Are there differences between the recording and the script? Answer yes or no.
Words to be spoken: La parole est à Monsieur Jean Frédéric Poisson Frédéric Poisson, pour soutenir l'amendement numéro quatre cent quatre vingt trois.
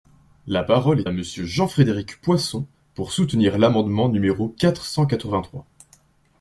yes